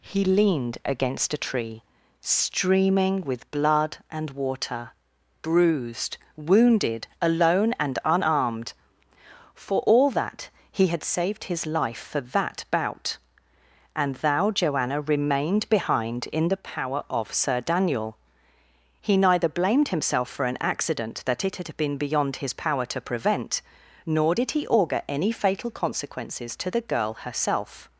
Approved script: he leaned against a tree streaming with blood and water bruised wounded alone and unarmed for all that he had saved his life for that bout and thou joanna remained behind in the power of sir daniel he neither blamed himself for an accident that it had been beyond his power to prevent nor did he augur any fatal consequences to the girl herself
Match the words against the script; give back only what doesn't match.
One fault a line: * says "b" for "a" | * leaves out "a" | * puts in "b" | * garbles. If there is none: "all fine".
all fine